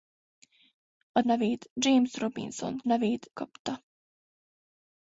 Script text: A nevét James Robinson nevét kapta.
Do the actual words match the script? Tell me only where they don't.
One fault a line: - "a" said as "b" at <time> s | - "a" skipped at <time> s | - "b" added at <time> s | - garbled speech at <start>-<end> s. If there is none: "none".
none